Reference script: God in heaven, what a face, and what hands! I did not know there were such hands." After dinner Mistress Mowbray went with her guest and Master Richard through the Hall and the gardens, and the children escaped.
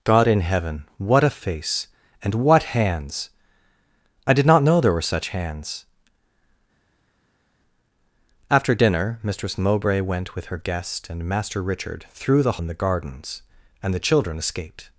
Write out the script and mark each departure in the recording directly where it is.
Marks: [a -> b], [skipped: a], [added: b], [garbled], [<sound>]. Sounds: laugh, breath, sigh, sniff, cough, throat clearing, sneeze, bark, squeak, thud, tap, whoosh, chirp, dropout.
God in heaven, what a face, and what hands! I did not know there were such hands." After dinner Mistress Mowbray went with her guest and Master Richard through the [skipped: Hall] and the gardens, and the children escaped.